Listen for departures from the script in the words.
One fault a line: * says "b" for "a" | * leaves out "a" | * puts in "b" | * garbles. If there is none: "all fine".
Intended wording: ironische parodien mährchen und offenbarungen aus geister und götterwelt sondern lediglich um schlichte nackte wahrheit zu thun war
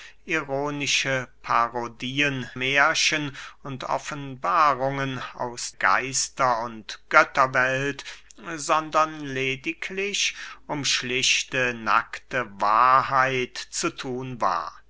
all fine